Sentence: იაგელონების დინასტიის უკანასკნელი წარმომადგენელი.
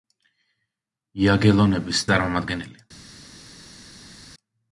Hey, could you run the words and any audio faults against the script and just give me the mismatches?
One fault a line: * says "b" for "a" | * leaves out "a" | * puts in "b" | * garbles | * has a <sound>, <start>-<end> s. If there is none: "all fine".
* leaves out "დინასტიის უკანასკნელი"